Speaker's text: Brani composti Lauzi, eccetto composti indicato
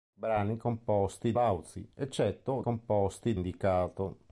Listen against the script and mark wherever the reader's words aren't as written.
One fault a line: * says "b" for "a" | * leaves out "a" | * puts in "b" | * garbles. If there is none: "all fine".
all fine